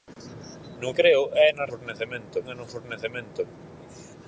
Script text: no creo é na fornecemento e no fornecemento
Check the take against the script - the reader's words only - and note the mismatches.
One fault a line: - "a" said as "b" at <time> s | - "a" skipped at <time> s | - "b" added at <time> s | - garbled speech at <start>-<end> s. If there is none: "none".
none